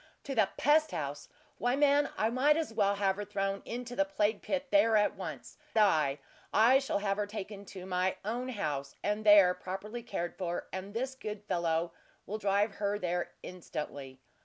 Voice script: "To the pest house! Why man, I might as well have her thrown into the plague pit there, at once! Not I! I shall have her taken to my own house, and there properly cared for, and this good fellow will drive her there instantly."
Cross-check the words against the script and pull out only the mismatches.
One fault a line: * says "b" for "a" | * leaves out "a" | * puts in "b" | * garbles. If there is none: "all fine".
* leaves out "Not"